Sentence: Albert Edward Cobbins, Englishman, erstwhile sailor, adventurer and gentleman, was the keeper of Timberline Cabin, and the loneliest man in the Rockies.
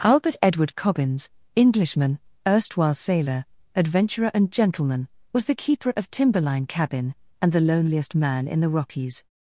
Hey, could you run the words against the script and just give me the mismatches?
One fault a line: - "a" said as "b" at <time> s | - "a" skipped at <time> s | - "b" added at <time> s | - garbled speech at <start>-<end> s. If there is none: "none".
none